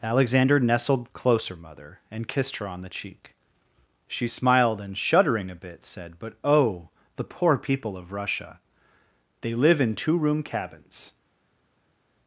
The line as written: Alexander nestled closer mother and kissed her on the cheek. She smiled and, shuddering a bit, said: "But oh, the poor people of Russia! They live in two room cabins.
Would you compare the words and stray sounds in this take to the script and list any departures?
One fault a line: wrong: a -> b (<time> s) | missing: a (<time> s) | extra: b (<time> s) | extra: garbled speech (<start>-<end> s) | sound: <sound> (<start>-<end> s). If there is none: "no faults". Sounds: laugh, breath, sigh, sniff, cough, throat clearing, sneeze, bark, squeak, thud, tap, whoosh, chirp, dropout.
no faults